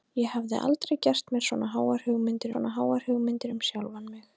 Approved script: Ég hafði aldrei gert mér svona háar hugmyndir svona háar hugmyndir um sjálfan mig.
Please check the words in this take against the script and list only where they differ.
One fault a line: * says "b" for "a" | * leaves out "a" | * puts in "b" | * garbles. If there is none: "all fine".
all fine